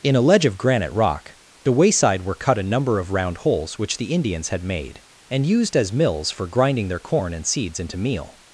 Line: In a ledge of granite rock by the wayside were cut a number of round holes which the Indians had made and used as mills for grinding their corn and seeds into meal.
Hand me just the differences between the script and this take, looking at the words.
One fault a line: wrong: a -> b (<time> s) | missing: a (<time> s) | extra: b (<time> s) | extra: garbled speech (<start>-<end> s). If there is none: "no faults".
missing: by (1.4 s)